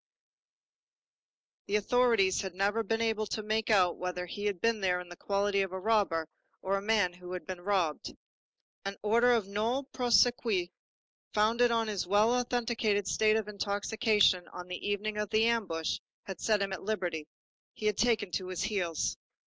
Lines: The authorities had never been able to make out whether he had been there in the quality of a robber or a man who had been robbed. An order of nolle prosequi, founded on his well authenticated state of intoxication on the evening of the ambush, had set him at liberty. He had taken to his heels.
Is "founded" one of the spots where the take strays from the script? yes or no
no